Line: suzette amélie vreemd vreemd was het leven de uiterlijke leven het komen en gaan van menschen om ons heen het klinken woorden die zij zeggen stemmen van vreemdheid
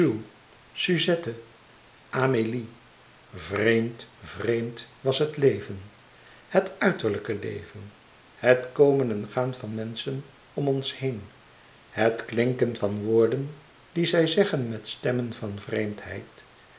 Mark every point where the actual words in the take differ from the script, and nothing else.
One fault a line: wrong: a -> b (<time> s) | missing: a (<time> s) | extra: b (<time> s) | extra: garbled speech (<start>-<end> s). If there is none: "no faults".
wrong: de -> het (6.5 s)
extra: van (12.7 s)
extra: met (14.7 s)